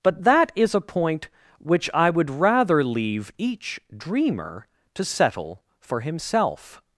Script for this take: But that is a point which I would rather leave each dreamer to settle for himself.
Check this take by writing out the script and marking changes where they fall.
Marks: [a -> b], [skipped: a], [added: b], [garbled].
But that is a point which I would rather leave each dreamer to settle for himself.